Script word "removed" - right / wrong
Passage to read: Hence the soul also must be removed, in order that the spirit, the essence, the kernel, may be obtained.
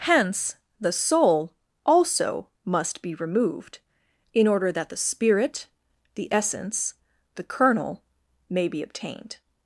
right